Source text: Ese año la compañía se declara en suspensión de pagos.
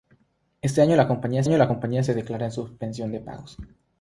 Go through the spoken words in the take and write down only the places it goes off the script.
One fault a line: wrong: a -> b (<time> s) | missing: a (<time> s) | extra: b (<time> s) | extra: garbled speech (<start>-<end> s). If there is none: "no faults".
extra: año la compañía (1.4 s)